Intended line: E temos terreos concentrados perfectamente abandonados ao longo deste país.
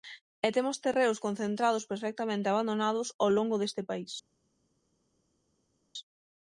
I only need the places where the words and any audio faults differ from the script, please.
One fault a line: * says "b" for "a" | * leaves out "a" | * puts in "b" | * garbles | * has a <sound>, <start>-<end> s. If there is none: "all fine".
all fine